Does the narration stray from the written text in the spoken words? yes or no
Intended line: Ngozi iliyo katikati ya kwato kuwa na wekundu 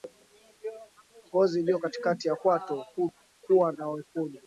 no